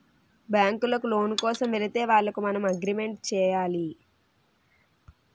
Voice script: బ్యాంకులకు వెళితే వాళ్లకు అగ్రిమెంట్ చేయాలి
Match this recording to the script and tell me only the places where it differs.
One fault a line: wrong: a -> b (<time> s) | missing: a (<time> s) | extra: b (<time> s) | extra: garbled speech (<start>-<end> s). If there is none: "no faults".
extra: లోను కోసం (1.1 s)
extra: మనం (2.4 s)